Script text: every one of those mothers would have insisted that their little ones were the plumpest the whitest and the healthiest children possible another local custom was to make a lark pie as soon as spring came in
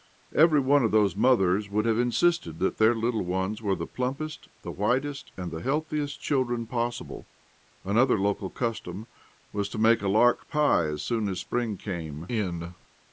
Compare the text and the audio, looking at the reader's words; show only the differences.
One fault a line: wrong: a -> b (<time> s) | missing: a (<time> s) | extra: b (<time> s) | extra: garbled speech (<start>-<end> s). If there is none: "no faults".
no faults